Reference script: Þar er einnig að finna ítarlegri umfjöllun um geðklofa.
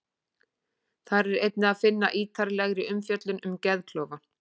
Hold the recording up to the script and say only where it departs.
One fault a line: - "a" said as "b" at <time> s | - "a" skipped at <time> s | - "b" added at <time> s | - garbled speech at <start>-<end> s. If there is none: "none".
none